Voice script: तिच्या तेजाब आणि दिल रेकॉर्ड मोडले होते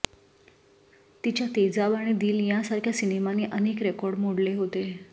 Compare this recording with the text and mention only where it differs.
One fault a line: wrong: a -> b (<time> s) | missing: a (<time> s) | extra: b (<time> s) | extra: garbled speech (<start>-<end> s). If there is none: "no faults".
extra: यांसारख्या सिनेमांनी अनेक (2.5 s)